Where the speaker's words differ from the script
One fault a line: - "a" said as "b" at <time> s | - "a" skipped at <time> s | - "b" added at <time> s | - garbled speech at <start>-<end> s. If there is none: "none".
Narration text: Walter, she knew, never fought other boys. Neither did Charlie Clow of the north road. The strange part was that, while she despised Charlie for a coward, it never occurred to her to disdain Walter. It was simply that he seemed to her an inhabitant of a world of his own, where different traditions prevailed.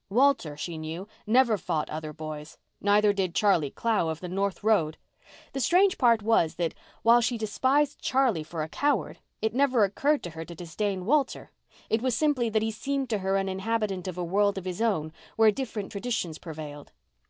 none